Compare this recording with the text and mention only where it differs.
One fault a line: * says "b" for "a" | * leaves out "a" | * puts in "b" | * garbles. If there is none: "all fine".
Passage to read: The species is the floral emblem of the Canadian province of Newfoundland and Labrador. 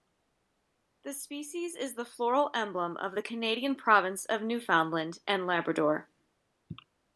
all fine